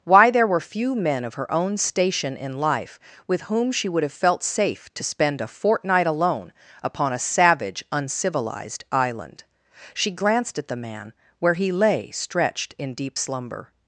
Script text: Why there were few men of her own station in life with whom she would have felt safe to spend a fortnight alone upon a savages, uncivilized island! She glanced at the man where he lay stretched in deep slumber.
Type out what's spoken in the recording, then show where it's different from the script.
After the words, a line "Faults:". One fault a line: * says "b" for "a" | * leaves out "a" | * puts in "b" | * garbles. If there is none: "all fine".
Why there were few men of her own station in life with whom she would have felt safe to spend a fortnight alone upon a savage, uncivilized island! She glanced at the man where he lay stretched in deep slumber.
Faults:
* says "savage" for "savages"